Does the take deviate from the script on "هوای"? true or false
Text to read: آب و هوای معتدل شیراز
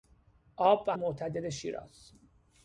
true